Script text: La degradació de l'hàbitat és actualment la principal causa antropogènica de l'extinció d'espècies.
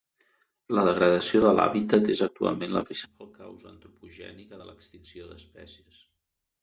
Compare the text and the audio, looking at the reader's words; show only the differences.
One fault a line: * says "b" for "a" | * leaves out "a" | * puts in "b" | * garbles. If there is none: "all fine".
all fine